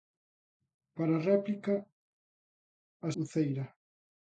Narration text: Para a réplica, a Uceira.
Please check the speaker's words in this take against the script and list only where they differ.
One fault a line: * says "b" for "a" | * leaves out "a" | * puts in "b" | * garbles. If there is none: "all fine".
all fine